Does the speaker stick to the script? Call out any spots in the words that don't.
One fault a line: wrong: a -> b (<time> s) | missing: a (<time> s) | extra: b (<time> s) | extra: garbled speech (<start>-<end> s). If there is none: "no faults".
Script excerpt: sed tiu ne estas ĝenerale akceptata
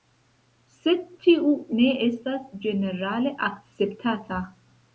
no faults